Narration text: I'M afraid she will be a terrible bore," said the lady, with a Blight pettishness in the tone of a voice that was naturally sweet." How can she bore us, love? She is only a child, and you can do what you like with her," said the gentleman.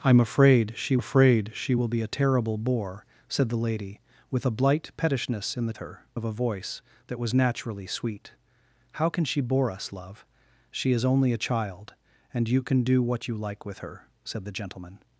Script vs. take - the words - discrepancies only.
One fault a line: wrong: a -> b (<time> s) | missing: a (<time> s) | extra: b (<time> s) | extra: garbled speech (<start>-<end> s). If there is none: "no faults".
extra: afraid she (1.0 s)
wrong: tone -> her (5.8 s)